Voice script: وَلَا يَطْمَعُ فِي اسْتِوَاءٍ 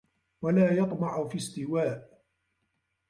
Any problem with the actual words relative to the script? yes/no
no